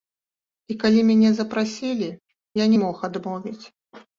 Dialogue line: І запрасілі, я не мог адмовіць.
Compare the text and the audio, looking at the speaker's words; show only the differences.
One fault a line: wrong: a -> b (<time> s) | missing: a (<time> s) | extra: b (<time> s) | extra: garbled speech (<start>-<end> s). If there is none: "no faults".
extra: калі мяне (0.8 s)